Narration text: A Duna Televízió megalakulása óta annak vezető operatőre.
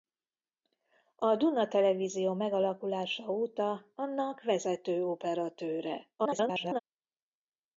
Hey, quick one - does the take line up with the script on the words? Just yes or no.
no